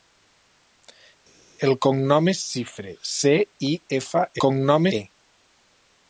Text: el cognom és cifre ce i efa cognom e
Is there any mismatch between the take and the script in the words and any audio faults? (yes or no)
no